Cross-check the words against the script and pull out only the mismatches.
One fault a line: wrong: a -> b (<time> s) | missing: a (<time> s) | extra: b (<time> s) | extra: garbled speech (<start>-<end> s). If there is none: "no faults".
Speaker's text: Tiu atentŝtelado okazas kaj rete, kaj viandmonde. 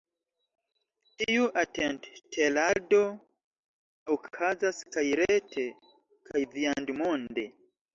no faults